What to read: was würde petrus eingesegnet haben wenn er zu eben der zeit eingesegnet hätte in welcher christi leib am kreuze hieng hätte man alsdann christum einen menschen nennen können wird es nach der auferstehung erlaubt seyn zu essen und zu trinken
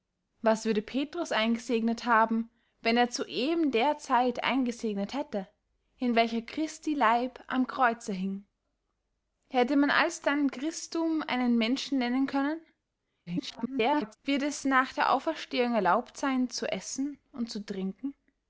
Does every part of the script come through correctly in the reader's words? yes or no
no